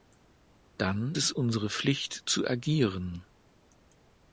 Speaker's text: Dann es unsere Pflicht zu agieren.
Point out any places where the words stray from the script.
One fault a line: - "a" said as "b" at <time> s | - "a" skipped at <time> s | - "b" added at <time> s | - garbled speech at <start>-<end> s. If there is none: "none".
none